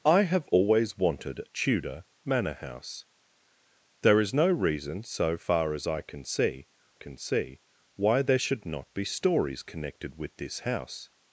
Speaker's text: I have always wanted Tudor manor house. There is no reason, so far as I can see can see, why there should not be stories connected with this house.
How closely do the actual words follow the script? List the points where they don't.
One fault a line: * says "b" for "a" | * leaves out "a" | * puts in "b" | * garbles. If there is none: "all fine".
all fine